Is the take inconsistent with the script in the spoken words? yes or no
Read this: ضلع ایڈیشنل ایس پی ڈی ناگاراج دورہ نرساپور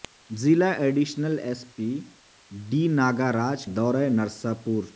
no